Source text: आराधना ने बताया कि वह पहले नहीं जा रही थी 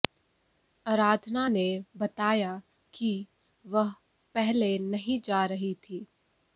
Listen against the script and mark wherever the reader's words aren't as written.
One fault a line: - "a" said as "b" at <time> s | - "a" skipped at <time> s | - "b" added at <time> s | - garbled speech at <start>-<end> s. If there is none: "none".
none